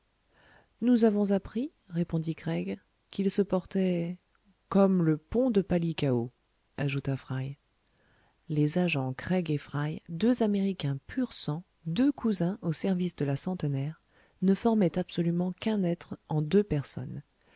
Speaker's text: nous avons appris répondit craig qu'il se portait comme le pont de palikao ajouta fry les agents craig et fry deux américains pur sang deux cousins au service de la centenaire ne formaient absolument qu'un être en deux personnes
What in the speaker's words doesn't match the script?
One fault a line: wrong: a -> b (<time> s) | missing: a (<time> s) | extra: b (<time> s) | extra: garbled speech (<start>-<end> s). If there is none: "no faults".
no faults